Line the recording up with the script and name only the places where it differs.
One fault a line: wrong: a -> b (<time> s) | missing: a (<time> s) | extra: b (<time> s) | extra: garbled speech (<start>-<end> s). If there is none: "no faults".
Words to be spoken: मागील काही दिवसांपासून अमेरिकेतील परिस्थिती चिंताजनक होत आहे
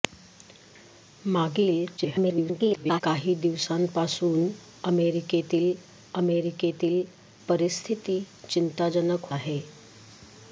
extra: garbled speech (2.0-3.0 s)
extra: अमेरिकेतील (6.2 s)
missing: होत (9.3 s)